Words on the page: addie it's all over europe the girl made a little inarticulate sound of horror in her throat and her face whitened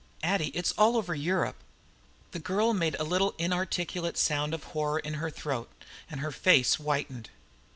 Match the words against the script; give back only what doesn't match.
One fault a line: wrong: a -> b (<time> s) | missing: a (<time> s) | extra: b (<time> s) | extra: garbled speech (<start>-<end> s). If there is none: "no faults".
no faults